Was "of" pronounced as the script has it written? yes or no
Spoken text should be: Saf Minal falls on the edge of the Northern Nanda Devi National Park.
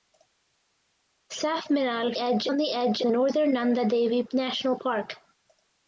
no